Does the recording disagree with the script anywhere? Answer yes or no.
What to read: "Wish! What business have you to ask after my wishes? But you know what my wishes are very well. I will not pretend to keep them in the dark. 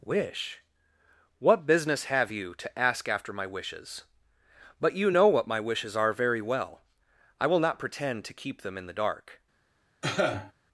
no